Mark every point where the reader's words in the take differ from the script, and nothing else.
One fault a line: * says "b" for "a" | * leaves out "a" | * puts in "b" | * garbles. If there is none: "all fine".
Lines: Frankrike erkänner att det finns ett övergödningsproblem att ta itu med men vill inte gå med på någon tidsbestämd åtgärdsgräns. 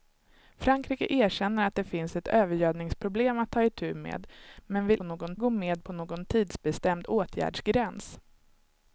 * says "någon" for "inte"